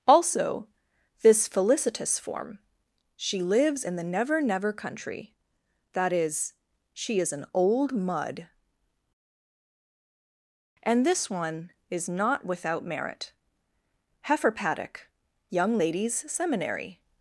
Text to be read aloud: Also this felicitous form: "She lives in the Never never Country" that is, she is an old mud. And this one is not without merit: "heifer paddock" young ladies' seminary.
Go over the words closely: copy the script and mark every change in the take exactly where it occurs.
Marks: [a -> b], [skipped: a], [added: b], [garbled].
Also this felicitous form: "She lives in the Never never Country" that is, she is an old mud. And this one is not without merit: "heifer paddock" young ladies' seminary.